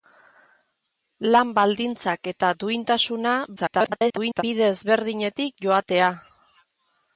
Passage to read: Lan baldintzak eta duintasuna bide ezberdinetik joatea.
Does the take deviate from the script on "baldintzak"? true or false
false